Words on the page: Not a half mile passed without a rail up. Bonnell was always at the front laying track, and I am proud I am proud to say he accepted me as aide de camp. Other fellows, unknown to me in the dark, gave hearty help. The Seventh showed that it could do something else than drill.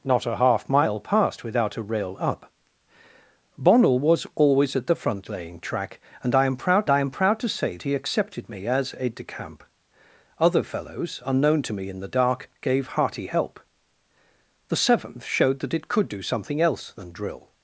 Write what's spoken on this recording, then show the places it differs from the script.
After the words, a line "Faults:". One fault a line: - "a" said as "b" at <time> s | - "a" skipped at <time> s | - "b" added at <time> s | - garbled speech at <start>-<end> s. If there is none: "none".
Not a half mile passed without a rail up. Bonnell was always at the front laying track, and I am proud I am proud to say he accepted me as aide de camp. Other fellows, unknown to me in the dark, gave hearty help. The Seventh showed that it could do something else than drill.
Faults:
none